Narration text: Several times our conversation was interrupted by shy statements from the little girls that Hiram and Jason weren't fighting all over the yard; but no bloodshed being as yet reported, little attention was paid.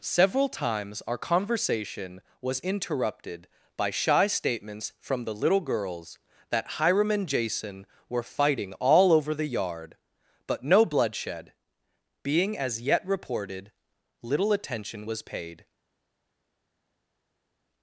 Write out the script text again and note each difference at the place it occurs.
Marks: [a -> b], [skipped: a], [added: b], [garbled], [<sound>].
Several times our conversation was interrupted by shy statements from the little girls that Hiram and Jason [weren't -> were] fighting all over the yard; but no bloodshed being as yet reported, little attention was paid.